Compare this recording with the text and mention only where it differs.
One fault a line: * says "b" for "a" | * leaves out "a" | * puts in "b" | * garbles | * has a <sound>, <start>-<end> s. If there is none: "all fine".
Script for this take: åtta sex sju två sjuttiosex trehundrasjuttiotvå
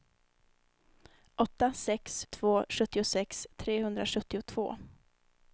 * leaves out "sju"